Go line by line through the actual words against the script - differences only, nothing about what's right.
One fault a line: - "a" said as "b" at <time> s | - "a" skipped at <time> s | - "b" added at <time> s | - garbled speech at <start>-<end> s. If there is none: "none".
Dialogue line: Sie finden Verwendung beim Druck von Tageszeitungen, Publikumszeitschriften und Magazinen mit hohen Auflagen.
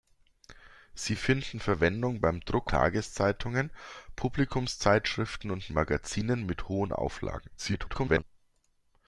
- "von" skipped at 2.7 s
- garbled speech at 7.6-8.2 s